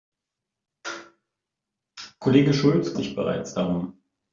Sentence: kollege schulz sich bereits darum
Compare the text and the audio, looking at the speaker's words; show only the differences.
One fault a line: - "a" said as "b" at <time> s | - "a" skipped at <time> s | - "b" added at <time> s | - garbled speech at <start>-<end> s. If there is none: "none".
none